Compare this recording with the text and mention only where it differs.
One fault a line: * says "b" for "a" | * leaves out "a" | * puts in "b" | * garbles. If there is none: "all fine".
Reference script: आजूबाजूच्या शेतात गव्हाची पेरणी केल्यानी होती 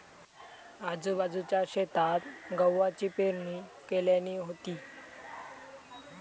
all fine